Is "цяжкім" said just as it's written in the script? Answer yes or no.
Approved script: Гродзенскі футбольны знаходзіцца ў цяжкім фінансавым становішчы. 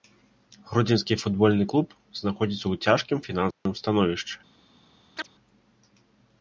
yes